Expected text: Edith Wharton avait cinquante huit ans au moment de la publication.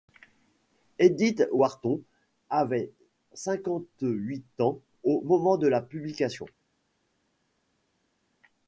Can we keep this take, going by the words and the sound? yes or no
yes